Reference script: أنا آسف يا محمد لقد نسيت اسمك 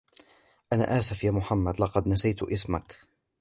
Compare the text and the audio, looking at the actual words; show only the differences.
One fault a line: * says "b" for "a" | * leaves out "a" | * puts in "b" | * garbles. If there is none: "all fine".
all fine